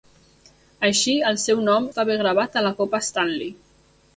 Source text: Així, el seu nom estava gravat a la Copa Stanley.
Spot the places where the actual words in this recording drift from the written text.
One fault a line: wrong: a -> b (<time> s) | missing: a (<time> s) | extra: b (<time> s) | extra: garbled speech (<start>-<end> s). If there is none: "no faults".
no faults